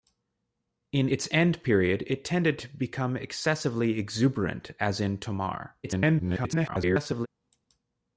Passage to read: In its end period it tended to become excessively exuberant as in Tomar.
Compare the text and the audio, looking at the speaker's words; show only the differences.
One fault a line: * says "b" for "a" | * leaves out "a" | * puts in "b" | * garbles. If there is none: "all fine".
* garbles